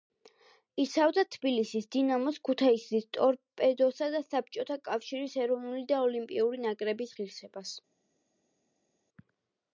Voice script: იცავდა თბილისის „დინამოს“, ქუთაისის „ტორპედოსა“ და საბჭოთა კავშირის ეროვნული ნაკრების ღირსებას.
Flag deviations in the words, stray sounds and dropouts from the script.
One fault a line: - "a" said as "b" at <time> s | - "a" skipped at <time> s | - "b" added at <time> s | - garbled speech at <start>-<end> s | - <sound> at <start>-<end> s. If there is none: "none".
- "და ოლიმპიური" added at 5.9 s